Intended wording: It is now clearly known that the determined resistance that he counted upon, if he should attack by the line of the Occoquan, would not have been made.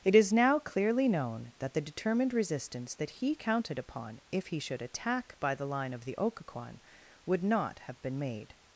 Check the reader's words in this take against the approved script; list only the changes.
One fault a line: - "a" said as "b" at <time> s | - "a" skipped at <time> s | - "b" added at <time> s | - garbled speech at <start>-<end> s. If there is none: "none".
none